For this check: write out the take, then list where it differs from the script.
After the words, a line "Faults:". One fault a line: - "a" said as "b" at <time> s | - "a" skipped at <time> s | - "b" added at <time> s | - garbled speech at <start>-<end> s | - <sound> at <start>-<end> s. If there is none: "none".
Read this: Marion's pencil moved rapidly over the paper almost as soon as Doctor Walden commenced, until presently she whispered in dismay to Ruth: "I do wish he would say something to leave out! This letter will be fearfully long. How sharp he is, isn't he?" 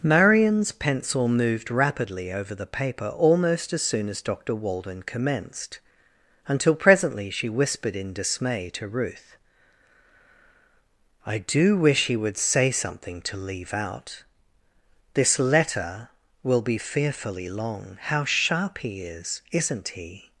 Marion's pencil moved rapidly over the paper almost as soon as Doctor Walden commenced, until presently she whispered in dismay to Ruth: "I do wish he would say something to leave out! This letter will be fearfully long. How sharp he is, isn't he?"
Faults:
none